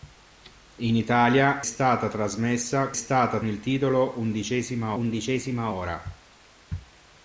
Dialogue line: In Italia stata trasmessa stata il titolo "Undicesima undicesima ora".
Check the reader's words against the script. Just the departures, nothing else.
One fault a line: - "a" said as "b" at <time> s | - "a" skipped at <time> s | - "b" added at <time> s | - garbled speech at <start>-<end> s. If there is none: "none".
none